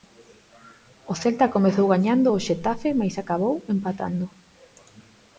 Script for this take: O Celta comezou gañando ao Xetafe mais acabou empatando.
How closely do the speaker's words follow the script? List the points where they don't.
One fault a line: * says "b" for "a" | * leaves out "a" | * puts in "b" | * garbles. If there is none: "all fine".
all fine